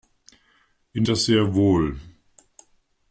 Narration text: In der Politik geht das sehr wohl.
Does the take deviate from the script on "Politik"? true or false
true